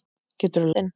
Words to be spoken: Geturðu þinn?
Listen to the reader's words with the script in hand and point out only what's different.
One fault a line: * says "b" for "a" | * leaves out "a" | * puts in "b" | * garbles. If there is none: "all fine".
all fine